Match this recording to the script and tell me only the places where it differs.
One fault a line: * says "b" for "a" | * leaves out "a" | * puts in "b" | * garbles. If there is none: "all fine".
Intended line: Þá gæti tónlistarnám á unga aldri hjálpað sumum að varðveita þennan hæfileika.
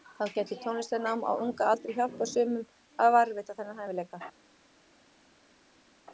all fine